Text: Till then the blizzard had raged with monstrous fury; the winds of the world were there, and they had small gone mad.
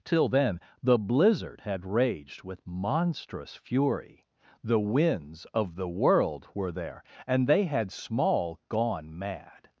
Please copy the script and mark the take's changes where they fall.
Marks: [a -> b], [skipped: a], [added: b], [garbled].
Till then the blizzard had raged with monstrous fury; the winds of the world were there, and they had small gone mad.